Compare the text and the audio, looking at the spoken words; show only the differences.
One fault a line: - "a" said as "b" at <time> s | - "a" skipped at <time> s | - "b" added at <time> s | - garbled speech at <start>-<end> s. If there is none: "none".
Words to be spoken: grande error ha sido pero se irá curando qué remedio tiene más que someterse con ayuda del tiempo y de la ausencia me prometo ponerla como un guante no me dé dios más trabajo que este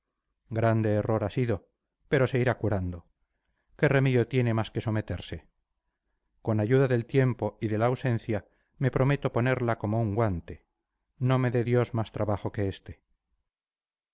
none